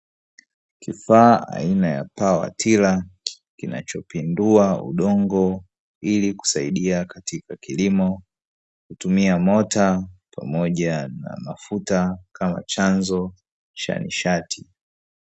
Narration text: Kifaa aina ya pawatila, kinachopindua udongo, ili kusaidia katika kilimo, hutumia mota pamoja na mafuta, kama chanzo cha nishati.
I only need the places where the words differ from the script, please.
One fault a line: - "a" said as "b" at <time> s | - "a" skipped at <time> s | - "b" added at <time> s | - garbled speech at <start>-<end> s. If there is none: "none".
none